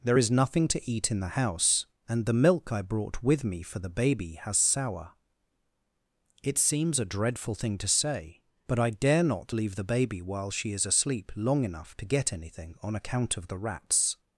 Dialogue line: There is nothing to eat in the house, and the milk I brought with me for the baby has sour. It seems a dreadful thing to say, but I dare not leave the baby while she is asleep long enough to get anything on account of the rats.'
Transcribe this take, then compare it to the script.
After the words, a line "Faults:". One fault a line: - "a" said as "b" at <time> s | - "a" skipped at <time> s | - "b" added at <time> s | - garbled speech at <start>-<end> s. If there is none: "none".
There is nothing to eat in the house, and the milk I brought with me for the baby has sour. It seems a dreadful thing to say, but I dare not leave the baby while she is asleep long enough to get anything on account of the rats.'
Faults:
none